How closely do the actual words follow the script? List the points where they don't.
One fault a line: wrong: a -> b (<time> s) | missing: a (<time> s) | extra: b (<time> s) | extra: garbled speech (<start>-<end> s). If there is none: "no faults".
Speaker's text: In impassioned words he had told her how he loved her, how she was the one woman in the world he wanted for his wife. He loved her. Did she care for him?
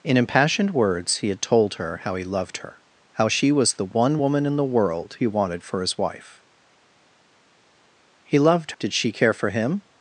missing: her (8.7 s)